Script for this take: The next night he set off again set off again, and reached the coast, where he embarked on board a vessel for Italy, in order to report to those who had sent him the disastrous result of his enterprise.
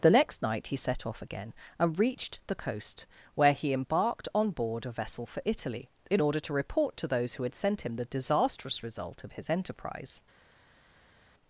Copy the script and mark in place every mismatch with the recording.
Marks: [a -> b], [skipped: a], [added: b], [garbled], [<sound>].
The next night he set off again [skipped: set off again,] and reached the coast, where he embarked on board a vessel for Italy, in order to report to those who had sent him the disastrous result of his enterprise.